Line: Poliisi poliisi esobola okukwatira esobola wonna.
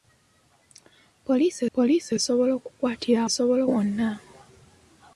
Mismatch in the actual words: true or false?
false